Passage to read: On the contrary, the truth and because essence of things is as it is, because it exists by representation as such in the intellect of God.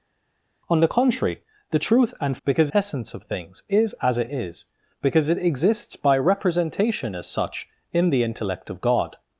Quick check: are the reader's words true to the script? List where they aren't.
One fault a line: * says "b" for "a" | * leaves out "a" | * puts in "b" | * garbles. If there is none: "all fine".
all fine